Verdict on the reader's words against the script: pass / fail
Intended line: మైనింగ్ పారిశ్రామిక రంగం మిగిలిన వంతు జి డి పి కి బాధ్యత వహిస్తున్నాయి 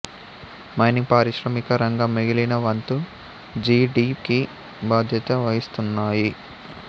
fail